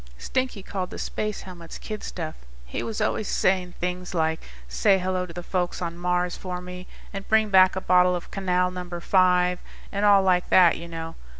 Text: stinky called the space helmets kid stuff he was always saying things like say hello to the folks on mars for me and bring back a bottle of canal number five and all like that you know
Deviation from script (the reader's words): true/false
false